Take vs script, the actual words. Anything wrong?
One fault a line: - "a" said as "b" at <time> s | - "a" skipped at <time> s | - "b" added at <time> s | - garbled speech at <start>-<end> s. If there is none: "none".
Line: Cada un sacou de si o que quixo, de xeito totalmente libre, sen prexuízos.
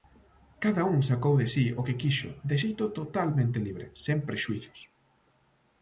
none